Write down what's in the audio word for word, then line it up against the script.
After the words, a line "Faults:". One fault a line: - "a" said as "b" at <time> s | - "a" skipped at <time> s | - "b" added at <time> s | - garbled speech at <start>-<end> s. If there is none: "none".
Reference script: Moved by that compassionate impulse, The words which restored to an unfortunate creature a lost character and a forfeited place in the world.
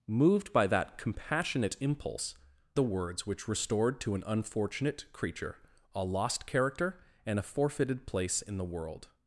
Moved by that compassionate impulse, The words which restored to an unfortunate creature a lost character and a forfeited place in the world.
Faults:
none